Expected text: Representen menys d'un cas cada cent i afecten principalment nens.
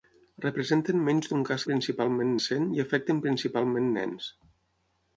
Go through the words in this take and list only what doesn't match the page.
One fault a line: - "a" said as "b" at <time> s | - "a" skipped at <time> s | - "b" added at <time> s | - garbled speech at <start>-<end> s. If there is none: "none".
- "cada" said as "principalment" at 1.7 s